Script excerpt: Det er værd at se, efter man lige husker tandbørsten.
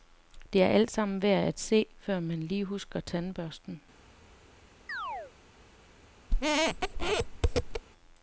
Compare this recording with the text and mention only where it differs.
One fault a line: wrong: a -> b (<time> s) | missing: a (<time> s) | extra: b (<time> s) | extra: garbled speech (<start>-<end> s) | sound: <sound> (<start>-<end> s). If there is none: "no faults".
extra: altsammen (0.7 s)
wrong: efter -> før (2.0 s)
sound: chirp (4.9-5.3 s)
sound: squeak (6.3-7.8 s)